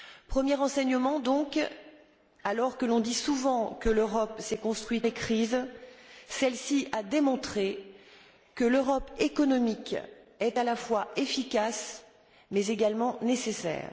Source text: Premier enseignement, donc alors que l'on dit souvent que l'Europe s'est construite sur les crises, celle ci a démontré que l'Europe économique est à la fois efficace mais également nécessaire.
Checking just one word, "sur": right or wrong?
wrong